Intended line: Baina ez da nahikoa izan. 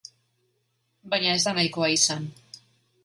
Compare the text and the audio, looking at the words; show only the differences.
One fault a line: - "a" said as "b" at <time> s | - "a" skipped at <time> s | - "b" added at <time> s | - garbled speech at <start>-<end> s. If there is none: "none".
none